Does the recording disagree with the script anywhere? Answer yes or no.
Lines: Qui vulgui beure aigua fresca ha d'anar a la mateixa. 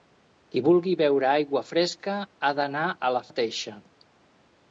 no